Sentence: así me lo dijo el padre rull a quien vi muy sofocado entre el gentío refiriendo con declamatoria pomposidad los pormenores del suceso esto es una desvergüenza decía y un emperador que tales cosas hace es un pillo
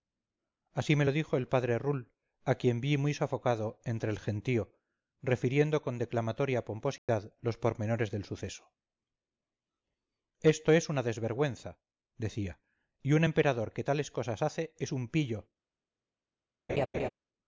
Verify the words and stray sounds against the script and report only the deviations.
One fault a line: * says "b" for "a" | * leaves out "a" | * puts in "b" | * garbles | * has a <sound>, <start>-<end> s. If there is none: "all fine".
* has a dropout, 7.0-7.1 s
* has a laugh, 16.7-17.1 s